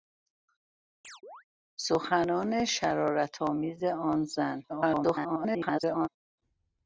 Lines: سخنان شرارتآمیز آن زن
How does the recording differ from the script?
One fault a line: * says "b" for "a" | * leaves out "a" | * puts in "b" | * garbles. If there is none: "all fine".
* garbles